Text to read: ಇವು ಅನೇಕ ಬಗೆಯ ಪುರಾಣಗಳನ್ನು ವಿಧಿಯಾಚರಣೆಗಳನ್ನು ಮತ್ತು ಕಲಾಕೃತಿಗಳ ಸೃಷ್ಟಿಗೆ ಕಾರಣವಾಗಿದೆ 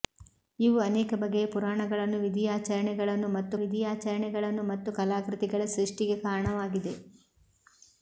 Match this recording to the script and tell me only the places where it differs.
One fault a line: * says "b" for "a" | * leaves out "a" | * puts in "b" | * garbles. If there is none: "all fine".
* puts in "ವಿಧಿಯಾಚರಣೆಗಳನ್ನು ಮತ್ತು"